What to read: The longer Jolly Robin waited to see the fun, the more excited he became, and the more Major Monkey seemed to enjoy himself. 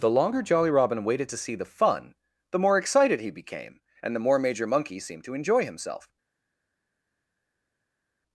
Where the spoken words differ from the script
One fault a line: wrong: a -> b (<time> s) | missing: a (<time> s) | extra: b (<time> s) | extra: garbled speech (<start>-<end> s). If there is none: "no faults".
no faults